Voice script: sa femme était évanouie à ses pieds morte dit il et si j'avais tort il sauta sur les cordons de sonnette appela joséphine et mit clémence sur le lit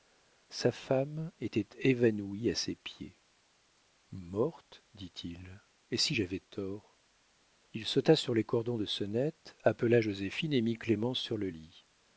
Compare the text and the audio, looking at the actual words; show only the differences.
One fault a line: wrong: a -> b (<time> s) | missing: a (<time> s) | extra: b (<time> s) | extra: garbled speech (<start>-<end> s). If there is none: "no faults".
no faults